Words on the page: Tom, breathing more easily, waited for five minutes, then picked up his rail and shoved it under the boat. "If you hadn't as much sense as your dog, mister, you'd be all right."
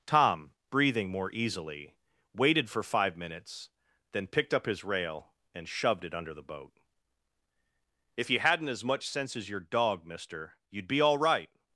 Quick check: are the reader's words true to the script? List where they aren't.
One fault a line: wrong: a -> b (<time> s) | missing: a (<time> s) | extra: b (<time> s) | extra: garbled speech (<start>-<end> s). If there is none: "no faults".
no faults